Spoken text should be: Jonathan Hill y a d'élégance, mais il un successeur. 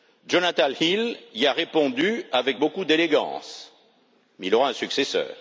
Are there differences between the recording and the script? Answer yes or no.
yes